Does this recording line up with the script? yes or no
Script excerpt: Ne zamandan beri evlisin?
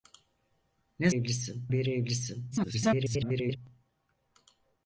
no